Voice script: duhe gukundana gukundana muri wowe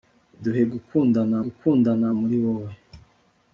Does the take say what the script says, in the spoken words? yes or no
yes